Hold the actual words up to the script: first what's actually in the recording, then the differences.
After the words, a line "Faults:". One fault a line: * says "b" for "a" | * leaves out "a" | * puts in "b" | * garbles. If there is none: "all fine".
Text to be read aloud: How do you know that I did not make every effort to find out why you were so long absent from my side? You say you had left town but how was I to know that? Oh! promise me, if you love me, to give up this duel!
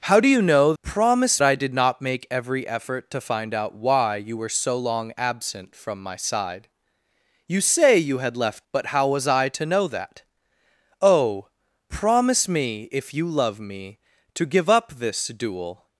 How do you know promise I did not make every effort to find out why you were so long absent from my side? You say you had left but how was I to know that? Oh! promise me, if you love me, to give up this duel!
Faults:
* says "promise" for "that"
* leaves out "town"